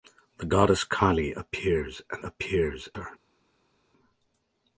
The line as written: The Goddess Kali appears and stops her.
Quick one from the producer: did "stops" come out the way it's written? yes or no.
no